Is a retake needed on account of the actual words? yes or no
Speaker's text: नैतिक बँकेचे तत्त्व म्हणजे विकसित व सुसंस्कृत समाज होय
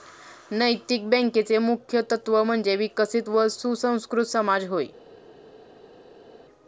yes